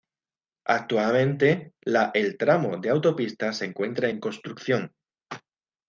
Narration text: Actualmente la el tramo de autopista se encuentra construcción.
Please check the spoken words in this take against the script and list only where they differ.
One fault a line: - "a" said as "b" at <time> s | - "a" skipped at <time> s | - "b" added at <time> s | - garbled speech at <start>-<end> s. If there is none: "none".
- "en" added at 4.1 s